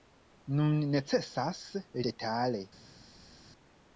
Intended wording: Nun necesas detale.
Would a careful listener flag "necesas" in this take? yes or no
no